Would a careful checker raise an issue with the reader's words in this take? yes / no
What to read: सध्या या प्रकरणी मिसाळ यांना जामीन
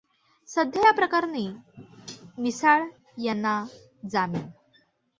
no